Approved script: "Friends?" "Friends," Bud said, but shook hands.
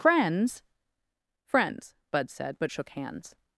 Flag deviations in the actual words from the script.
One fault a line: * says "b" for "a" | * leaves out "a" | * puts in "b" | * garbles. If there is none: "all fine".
all fine